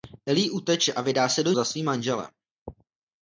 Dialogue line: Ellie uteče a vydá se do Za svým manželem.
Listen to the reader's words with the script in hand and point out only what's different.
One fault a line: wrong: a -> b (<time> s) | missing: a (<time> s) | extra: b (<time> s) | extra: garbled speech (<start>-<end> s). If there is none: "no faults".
no faults